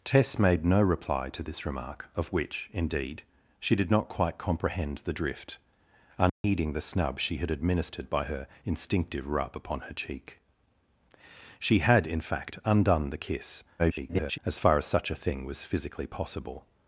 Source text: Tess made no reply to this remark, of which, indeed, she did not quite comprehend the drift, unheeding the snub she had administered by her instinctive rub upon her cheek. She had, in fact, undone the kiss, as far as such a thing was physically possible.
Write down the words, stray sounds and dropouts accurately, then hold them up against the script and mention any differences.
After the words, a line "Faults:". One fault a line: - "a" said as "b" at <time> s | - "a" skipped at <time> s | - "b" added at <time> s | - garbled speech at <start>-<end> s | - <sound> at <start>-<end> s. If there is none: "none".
Tess made no reply to this remark, of which, indeed, she did not quite comprehend the drift, unheeding the snub she had administered by her instinctive rub upon her cheek. She had, in fact, undone the kiss, [garbled] as far as such a thing was physically possible.
Faults:
- dropout at 6.3-6.4 s
- garbled speech at 13.8-14.4 s